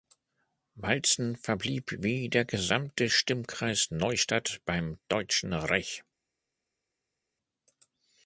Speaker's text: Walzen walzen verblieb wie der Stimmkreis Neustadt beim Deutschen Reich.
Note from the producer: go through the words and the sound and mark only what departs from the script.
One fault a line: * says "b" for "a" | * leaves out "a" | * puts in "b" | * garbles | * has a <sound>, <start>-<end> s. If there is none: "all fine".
* leaves out "walzen"
* puts in "gesamte"